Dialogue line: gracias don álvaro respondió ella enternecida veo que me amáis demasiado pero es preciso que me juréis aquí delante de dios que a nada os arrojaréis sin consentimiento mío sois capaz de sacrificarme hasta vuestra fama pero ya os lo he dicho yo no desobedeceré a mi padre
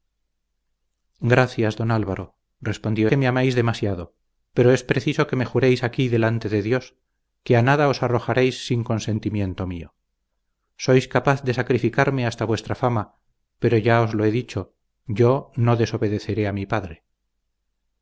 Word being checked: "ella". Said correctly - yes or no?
no